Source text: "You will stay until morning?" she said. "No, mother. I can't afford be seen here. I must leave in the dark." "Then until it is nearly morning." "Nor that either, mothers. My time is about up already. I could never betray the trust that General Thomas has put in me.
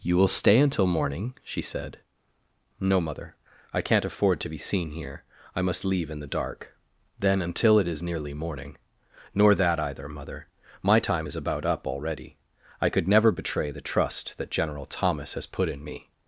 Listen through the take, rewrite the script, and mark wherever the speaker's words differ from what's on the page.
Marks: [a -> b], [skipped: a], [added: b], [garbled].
"You will stay until morning?" she said. "No, mother. I can't afford [added: to] be seen here. I must leave in the dark." "Then until it is nearly morning." "Nor that either, [mothers. -> mother] My time is about up already. I could never betray the trust that General Thomas has put in me.